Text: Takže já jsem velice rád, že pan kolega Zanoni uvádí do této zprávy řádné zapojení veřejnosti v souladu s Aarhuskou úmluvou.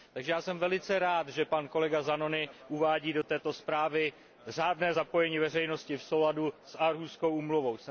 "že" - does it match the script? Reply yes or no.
yes